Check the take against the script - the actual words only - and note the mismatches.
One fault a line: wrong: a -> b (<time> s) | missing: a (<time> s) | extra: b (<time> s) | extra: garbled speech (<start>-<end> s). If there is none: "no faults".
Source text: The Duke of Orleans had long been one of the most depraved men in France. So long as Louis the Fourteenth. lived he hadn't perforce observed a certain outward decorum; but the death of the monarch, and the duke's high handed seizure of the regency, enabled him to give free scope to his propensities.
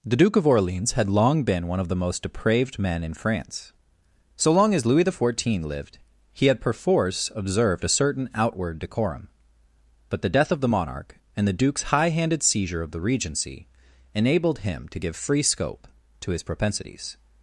wrong: hadn't -> had (6.5 s)